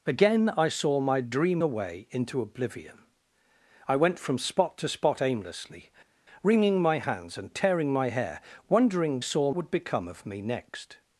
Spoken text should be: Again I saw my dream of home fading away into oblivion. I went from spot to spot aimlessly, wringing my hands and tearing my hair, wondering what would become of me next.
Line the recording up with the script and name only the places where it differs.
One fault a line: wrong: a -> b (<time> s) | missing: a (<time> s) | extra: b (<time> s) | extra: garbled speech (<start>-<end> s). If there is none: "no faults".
missing: of home fading (1.6 s)
wrong: what -> saw (9.2 s)